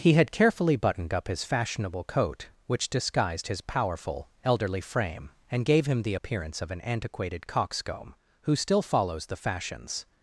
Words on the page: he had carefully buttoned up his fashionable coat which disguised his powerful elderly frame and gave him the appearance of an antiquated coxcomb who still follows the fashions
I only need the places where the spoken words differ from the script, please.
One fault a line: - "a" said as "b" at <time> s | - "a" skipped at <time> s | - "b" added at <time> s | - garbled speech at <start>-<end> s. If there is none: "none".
none